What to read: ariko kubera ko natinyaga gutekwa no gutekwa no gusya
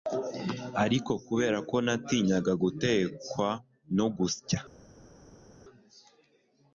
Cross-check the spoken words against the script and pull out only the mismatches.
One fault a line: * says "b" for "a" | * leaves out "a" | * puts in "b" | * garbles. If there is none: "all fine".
* leaves out "gutekwa no"